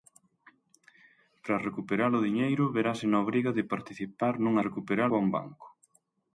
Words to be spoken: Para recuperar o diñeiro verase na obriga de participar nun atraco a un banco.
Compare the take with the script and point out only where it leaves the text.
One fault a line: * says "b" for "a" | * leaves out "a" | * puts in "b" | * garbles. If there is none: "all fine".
* says "recuperar" for "atraco"